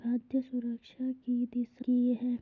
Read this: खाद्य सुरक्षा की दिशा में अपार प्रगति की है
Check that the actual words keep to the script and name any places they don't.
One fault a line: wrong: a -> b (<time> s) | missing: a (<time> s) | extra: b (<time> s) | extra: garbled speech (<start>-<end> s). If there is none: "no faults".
missing: में अपार प्रगति (1.9 s)